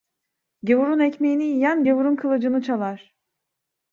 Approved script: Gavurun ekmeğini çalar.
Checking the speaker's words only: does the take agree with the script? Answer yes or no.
no